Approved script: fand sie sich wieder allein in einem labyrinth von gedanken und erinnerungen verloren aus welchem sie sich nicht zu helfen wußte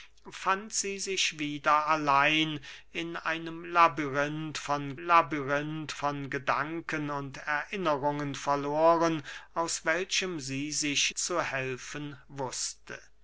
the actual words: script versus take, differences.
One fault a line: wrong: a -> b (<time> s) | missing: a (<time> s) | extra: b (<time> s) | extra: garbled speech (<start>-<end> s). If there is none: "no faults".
extra: labyrinth von (5.0 s)
missing: nicht (11.1 s)